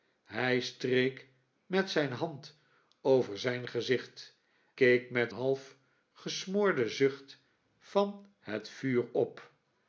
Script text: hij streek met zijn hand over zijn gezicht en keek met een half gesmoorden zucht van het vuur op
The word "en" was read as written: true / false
false